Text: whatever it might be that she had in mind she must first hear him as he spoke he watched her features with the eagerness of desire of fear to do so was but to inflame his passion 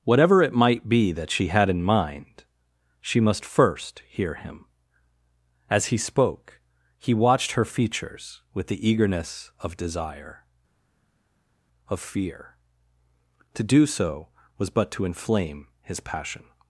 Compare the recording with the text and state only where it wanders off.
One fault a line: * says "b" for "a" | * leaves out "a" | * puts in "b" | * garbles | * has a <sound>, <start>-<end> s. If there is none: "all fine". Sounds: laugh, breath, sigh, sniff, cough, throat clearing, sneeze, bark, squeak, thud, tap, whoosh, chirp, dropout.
all fine